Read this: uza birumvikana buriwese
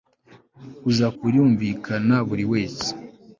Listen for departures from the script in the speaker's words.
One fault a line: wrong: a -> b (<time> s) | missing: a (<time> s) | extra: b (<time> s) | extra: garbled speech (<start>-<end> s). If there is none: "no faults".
no faults